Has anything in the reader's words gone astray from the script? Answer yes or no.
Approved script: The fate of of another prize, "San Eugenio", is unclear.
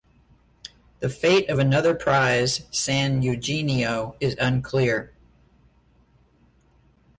yes